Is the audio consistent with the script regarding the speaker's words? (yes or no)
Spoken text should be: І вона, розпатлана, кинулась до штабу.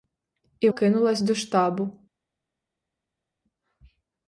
no